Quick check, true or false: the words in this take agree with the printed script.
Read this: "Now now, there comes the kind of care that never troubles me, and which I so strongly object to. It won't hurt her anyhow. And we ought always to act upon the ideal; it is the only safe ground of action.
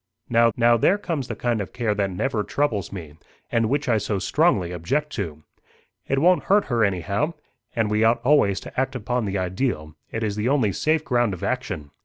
true